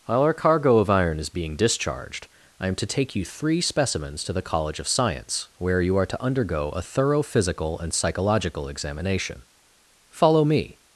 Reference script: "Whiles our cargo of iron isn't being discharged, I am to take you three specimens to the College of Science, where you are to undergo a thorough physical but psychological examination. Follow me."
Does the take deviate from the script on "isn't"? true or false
true